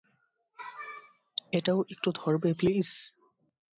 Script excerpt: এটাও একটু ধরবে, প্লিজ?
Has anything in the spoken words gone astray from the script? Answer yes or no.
no